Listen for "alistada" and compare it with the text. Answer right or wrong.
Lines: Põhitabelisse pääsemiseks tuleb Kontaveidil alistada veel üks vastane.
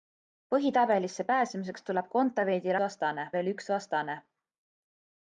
wrong